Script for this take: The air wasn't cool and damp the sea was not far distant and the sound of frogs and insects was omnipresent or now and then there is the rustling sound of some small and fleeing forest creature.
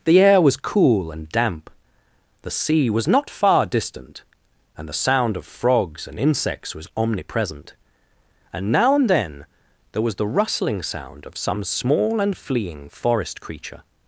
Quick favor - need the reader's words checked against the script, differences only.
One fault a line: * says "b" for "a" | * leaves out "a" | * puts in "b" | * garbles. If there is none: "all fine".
* says "was" for "wasn't"
* says "and" for "or"
* says "was" for "is"